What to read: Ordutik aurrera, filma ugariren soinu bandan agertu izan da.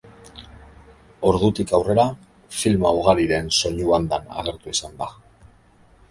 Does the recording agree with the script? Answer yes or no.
yes